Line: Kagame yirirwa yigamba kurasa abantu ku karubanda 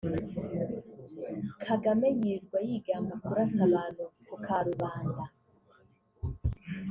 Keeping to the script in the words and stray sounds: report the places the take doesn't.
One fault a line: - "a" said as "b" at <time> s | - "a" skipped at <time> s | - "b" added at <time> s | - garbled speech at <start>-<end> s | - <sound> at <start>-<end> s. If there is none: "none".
none